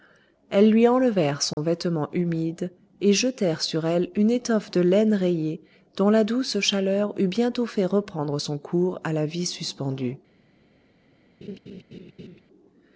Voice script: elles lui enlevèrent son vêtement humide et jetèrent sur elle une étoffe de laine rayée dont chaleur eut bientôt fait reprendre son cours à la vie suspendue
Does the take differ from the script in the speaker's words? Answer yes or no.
yes